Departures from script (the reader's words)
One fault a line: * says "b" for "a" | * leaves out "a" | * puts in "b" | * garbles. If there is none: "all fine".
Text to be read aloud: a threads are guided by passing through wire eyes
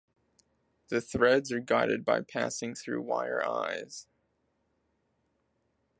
* says "the" for "a"